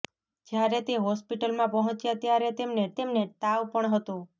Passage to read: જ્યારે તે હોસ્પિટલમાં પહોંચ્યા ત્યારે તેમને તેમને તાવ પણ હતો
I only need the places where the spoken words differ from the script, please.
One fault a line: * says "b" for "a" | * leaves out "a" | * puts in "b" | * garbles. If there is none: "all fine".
all fine